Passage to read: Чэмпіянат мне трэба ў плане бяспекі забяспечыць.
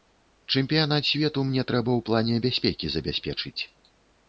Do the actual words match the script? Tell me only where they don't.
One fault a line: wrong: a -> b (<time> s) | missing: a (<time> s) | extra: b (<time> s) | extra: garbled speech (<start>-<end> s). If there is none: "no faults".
extra: свету (1.1 s)